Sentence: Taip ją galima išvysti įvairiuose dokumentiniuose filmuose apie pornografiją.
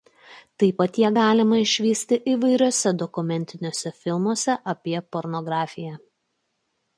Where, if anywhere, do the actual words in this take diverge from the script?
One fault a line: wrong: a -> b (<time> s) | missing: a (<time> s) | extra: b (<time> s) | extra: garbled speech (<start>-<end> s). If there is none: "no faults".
extra: pat (0.8 s)